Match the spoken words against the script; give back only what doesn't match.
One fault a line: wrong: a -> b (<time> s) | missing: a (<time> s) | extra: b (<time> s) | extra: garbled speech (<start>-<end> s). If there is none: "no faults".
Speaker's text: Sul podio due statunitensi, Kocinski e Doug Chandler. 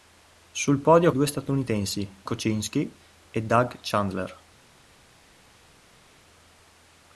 no faults